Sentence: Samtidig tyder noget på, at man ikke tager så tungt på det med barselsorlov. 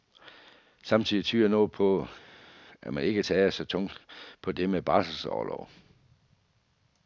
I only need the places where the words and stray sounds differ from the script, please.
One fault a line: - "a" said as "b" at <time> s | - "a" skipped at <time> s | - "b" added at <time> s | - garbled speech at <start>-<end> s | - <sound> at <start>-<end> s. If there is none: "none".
none